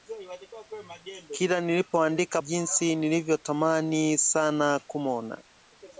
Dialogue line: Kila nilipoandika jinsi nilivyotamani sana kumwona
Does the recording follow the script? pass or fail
pass